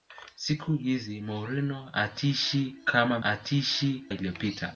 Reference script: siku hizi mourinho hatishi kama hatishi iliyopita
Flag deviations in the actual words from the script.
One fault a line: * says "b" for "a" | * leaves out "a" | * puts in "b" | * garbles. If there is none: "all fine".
all fine